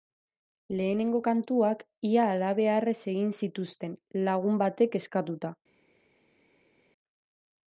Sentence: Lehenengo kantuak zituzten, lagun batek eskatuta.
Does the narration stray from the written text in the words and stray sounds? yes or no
yes